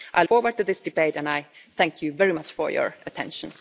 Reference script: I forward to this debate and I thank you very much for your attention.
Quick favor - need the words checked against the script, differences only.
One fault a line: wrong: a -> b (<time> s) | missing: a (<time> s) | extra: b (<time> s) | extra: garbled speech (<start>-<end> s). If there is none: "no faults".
no faults